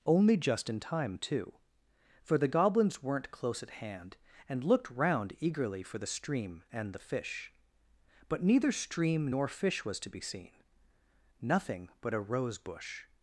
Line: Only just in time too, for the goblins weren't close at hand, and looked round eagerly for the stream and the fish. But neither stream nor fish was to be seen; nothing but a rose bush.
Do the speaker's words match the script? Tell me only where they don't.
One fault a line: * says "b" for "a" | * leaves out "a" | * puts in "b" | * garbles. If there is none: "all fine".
all fine